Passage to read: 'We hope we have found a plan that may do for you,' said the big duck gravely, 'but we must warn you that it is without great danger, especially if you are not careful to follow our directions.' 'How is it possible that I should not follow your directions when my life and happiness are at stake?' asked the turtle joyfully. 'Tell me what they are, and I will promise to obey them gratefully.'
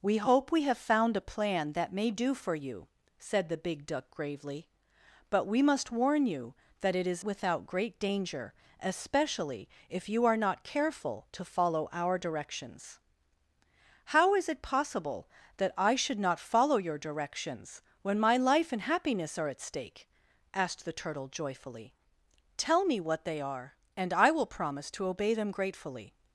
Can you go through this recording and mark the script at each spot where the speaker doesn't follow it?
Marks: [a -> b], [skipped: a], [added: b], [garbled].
'We hope we have found a plan that may do for you,' said the big duck gravely, 'but we must warn you that it is without great danger, especially if you are not careful to follow our directions.' 'How is it possible that I should not follow your directions when my life and happiness are at stake?' asked the turtle joyfully. 'Tell me what they are, and I will promise to obey them gratefully.'